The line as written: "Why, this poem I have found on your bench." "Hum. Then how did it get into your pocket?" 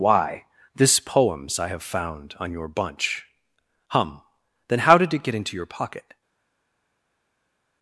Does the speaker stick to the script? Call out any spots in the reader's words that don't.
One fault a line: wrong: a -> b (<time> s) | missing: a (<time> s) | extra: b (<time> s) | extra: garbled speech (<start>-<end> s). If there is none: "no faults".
wrong: poem -> poems (1.0 s)
wrong: bench -> bunch (2.7 s)